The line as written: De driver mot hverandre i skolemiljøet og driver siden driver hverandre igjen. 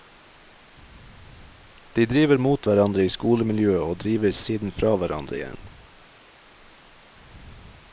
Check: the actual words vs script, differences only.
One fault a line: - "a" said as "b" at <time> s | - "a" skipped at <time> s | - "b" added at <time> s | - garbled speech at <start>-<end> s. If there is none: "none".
- "driver" said as "fra" at 4.8 s